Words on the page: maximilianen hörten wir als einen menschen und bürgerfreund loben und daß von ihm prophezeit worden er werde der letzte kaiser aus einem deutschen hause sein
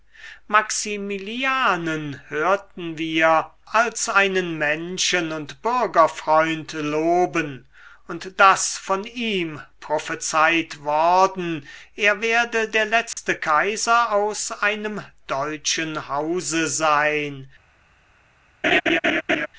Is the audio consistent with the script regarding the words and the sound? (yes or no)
no